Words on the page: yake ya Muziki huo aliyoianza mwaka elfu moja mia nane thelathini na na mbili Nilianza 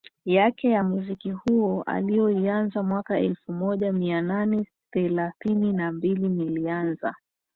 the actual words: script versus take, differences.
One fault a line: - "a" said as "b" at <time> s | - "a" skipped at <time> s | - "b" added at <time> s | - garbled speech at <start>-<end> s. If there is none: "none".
- "na" skipped at 5.9 s